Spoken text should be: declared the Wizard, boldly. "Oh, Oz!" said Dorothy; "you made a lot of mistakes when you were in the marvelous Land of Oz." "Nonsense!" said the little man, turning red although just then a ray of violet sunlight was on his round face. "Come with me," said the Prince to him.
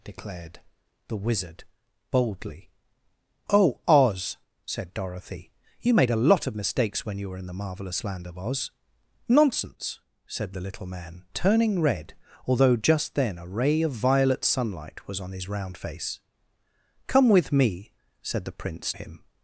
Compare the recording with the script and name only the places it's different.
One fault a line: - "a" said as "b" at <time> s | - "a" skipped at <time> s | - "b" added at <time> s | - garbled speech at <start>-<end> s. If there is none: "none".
- "to" skipped at 18.9 s